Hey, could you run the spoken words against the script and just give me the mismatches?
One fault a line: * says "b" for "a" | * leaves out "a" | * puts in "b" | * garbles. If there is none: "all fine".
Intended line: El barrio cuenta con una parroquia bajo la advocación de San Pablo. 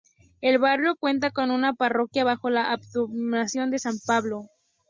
all fine